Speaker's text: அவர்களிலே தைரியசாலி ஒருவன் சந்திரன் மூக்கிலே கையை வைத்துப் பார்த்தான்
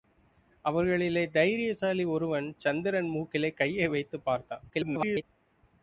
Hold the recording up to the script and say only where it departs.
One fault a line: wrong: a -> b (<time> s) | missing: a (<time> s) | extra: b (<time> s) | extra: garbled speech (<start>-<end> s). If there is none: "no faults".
extra: garbled speech (4.7-5.2 s)